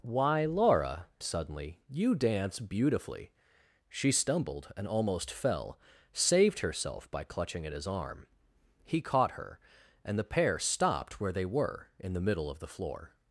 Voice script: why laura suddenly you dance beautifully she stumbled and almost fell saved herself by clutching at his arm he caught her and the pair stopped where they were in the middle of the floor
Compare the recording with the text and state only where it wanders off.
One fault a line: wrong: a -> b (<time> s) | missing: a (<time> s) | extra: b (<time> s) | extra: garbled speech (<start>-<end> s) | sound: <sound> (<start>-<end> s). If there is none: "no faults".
no faults